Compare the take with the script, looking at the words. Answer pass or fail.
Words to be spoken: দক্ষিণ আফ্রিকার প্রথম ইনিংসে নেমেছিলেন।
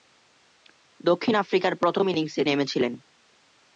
pass